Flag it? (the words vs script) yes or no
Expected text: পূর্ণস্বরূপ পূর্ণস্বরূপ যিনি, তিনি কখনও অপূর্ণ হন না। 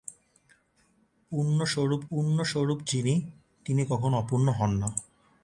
no